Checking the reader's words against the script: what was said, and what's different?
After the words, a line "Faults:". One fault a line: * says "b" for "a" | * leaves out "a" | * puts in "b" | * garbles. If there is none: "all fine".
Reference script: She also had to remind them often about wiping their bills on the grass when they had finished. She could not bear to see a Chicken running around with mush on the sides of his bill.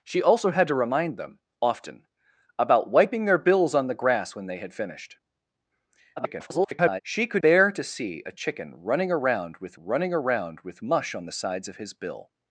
She also had to remind them often about wiping their bills on the grass when they had finished. [garbled] She could bear to see a Chicken running around with running around with mush on the sides of his bill.
Faults:
* garbles
* leaves out "not"
* puts in "running around with"